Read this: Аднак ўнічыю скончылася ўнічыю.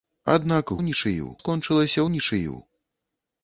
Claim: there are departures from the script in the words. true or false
false